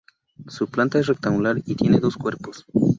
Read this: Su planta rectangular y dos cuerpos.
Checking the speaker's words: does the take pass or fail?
fail